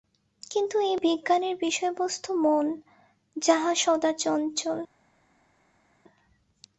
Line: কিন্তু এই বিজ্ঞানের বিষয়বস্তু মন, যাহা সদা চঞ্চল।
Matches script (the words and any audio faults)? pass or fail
pass